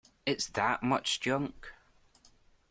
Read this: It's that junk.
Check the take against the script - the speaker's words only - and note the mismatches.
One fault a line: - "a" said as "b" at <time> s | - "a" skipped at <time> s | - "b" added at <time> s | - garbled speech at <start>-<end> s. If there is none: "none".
- "much" added at 0.8 s